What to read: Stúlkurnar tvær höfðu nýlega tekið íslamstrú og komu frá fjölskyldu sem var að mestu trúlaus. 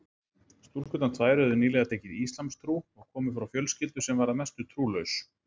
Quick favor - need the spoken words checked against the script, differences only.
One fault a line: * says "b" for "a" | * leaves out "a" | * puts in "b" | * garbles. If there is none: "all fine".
all fine